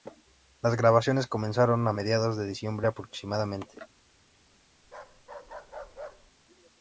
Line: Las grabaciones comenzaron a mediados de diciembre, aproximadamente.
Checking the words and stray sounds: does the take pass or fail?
fail